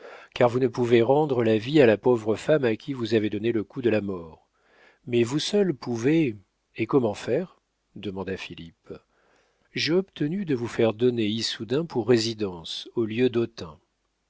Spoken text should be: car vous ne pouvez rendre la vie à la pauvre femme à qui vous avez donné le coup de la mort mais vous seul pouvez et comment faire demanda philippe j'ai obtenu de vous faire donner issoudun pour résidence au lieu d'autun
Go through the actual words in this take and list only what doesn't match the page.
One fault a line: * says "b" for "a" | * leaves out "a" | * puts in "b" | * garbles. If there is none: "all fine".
all fine